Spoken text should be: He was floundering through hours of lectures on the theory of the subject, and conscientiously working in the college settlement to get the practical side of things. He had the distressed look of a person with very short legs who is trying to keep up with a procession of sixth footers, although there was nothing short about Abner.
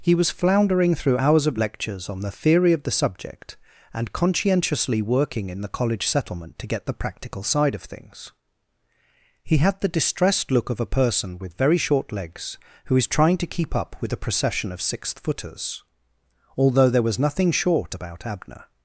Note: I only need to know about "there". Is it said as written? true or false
true